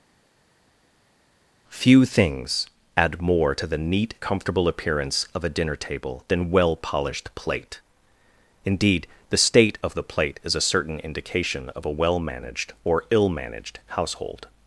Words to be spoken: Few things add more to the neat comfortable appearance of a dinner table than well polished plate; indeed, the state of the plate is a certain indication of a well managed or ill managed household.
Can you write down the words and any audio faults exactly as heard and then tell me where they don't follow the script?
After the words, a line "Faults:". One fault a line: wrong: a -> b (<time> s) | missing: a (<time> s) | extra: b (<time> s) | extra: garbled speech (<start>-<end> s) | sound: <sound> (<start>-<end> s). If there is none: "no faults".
Few things add more to the neat comfortable appearance of a dinner table than well polished plate; indeed, the state of the plate is a certain indication of a well managed or ill managed household.
Faults:
no faults